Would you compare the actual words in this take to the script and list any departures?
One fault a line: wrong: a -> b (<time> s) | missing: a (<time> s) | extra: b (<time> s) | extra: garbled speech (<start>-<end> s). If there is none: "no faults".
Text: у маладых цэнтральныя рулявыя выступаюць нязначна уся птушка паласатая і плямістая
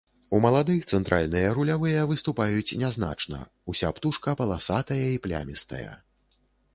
no faults